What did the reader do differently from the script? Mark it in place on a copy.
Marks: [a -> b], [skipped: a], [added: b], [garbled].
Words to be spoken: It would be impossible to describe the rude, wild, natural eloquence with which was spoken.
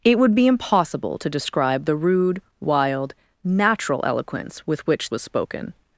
It would be impossible to describe the rude, wild, natural eloquence with which was spoken.